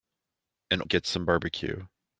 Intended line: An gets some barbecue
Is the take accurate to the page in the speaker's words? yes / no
yes